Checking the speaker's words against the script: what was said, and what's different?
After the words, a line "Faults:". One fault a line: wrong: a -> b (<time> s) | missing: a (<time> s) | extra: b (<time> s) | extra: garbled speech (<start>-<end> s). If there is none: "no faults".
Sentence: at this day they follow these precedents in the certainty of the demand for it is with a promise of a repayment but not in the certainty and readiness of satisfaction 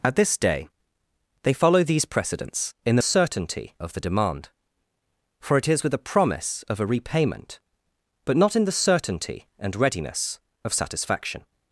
at this day they follow these precedents in the certainty of the demand for it is with a promise of a repayment but not in the certainty and readiness of satisfaction
Faults:
no faults